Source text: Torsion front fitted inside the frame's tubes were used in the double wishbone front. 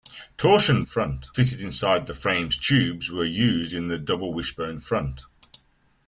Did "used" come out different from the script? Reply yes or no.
no